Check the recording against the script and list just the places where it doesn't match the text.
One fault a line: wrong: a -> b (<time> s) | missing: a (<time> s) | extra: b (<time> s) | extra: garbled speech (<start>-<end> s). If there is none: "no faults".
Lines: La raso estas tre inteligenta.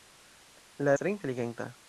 missing: raso estas (0.9 s)